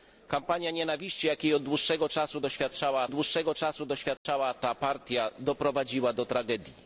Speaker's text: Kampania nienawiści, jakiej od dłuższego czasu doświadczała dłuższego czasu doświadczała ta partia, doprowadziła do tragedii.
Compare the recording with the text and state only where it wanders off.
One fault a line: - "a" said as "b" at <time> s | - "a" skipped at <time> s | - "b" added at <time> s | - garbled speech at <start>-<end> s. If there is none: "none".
none